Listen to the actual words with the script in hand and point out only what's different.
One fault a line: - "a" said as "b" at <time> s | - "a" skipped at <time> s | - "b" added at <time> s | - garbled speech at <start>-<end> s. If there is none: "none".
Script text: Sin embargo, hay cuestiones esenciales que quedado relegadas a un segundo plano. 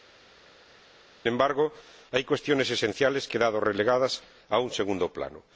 none